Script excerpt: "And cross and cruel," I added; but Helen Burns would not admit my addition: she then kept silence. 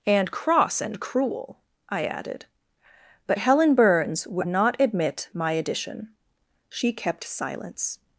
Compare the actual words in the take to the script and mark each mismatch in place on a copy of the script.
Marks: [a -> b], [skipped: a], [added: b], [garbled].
"And cross and cruel," I added; but Helen Burns would not admit my addition: she [skipped: then] kept silence.